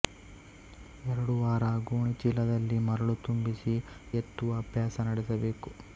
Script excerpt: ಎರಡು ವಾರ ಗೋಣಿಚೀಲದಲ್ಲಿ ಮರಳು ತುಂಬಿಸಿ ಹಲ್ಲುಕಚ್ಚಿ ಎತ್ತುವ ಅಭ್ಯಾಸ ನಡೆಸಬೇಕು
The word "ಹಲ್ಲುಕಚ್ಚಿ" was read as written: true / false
false